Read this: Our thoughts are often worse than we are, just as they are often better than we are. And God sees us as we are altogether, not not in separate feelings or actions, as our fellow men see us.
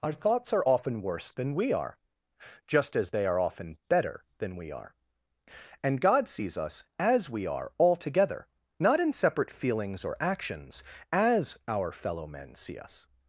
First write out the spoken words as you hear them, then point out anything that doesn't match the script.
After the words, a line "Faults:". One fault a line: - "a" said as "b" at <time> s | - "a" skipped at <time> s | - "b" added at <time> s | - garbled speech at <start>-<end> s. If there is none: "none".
Our thoughts are often worse than we are, just as they are often better than we are. And God sees us as we are altogether, not in separate feelings or actions, as our fellow men see us.
Faults:
- "not" skipped at 9.0 s